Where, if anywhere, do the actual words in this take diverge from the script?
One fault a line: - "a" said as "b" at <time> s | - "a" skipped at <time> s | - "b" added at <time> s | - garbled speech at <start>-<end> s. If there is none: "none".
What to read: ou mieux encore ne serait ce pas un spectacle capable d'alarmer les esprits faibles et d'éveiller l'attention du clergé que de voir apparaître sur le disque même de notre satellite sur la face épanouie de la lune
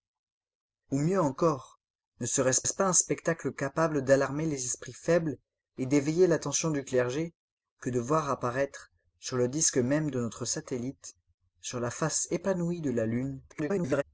- "ce" added at 2.7 s
- garbled speech at 13.5-14.0 s